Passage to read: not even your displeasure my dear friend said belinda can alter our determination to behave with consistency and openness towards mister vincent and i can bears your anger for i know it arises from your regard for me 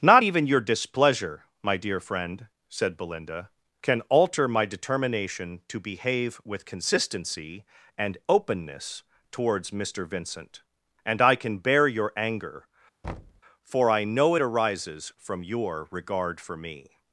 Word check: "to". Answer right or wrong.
right